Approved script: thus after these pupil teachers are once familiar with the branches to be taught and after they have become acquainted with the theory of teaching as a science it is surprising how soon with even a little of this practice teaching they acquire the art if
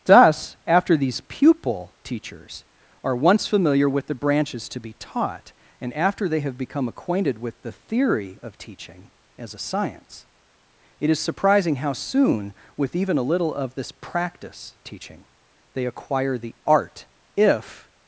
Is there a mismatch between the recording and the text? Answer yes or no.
no